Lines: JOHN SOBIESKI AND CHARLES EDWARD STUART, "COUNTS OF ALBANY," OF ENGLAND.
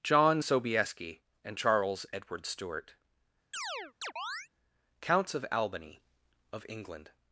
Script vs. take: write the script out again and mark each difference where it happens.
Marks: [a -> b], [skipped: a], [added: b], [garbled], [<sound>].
JOHN SOBIESKI AND CHARLES EDWARD STUART, [chirp] "COUNTS OF ALBANY," OF ENGLAND.